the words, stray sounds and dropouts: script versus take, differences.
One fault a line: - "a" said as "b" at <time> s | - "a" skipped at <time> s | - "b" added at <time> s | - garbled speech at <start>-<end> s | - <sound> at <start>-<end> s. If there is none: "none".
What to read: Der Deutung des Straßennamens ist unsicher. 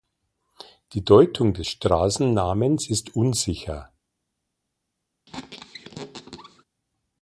- "Der" said as "Die" at 0.9 s
- squeak at 5.3-6.6 s